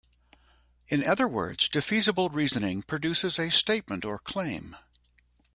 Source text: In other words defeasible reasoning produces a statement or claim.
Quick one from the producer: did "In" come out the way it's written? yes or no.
yes